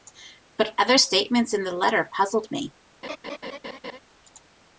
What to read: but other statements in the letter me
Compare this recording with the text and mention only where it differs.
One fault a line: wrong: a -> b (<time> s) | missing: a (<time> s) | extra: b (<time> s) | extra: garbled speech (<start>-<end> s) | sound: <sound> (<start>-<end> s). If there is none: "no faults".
extra: puzzled (2.2 s)
sound: laugh (3.0-4.0 s)